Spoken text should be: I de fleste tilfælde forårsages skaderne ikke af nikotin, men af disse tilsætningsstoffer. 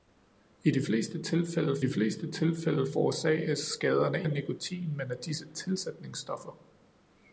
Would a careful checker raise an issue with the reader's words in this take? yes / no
yes